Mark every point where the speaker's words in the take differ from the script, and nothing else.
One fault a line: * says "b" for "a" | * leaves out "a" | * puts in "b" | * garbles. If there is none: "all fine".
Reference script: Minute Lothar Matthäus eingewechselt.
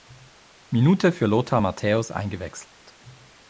* puts in "für"